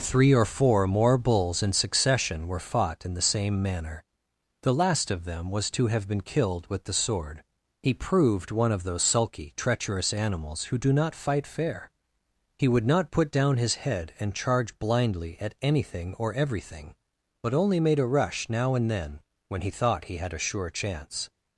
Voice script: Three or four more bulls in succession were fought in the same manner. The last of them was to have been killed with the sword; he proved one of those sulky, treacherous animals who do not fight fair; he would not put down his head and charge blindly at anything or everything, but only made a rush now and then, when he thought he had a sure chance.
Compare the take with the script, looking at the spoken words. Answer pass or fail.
pass